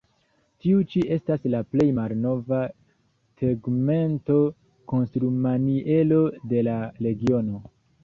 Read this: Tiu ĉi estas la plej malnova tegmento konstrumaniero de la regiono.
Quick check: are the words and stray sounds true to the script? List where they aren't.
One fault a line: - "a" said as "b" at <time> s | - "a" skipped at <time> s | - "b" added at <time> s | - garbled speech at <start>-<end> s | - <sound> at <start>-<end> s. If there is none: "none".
none